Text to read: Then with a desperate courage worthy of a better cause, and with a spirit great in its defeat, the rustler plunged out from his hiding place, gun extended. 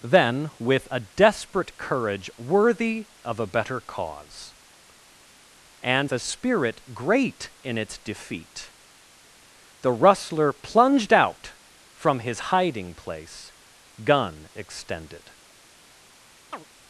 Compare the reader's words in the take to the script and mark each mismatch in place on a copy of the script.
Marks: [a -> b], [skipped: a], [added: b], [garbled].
Then with a desperate courage worthy of a better cause, and [skipped: with] a spirit great in its defeat, the rustler plunged out from his hiding place, gun extended.